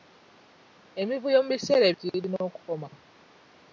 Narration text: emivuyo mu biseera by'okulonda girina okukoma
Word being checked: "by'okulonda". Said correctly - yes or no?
no